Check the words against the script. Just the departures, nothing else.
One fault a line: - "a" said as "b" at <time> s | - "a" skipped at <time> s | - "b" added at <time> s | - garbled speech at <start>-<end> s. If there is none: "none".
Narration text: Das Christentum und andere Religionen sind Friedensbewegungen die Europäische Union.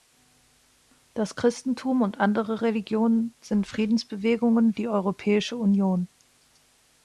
none